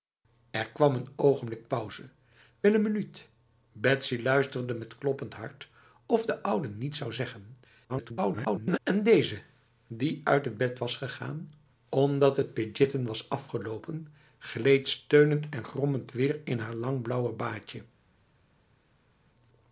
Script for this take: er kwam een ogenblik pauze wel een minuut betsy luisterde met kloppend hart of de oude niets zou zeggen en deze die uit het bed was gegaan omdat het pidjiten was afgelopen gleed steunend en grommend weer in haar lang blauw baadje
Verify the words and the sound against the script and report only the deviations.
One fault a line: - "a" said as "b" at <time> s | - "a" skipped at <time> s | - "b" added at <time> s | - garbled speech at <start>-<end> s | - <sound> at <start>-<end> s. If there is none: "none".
- garbled speech at 7.9-8.8 s